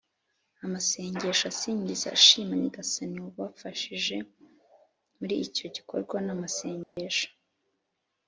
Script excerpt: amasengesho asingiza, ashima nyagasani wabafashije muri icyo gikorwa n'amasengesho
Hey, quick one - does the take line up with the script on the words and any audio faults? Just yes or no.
no